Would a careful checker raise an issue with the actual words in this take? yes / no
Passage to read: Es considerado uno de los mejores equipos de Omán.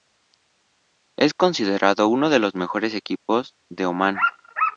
no